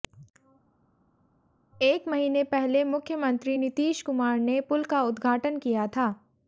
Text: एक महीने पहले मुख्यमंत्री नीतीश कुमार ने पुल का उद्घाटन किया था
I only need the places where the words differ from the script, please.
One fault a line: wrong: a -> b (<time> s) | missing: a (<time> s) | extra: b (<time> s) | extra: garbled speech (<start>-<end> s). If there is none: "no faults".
no faults